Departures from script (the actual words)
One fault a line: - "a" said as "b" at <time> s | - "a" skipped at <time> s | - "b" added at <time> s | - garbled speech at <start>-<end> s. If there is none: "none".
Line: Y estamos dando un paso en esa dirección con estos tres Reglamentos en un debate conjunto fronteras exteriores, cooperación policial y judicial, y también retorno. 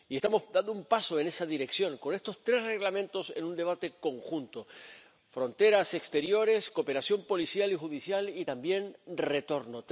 none